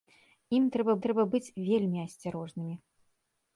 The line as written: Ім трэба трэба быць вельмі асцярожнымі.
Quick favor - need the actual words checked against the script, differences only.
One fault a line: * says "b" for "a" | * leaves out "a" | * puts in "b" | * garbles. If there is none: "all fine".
all fine